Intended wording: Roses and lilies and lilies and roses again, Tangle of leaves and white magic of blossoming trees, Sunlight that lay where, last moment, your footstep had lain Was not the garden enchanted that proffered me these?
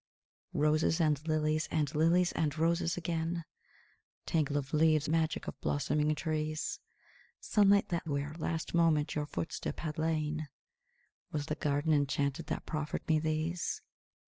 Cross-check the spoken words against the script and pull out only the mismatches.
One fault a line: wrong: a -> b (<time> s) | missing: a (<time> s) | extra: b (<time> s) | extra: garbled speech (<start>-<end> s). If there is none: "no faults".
missing: and white (5.1 s)
missing: lay (8.1 s)
missing: not (11.5 s)